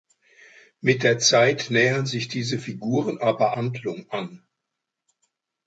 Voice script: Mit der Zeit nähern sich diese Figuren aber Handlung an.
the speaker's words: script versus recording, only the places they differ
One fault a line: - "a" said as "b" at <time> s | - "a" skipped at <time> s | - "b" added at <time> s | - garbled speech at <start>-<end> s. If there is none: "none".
none